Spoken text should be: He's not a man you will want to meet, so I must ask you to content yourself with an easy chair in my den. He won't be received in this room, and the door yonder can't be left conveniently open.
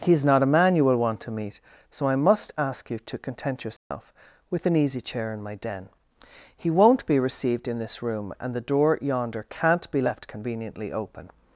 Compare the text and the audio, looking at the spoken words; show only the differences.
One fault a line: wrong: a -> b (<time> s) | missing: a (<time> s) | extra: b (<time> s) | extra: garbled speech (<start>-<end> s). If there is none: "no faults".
no faults